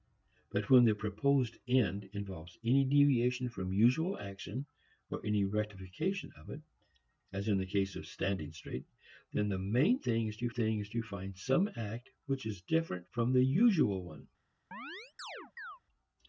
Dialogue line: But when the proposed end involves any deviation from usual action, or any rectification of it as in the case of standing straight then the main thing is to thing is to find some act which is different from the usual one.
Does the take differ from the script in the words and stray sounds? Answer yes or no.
yes